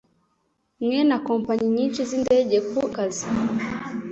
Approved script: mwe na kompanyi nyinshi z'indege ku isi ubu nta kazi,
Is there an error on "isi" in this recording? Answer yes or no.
yes